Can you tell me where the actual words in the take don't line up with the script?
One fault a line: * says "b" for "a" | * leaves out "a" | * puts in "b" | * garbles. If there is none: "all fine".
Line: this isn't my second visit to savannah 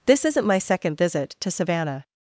all fine